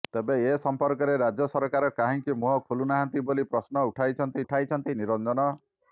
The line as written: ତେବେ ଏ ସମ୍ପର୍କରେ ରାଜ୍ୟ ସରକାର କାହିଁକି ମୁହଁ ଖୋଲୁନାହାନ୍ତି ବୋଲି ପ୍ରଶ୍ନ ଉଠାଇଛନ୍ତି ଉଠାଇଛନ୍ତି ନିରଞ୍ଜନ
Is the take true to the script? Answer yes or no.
yes